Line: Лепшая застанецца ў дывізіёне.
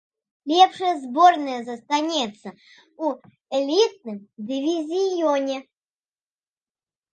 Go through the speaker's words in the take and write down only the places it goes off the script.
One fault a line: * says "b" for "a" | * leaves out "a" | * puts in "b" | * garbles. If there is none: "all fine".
* puts in "зборная"
* puts in "элітным"